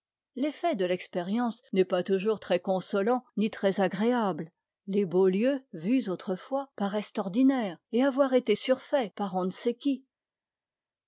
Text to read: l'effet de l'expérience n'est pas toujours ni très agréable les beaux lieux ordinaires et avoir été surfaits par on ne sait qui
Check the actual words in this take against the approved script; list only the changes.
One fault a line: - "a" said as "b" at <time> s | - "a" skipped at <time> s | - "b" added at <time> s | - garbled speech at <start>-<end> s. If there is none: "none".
- "très consolant" added at 2.4 s
- "vus autrefois paraissent" added at 5.7 s